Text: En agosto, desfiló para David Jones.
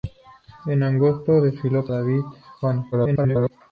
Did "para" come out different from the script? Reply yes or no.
yes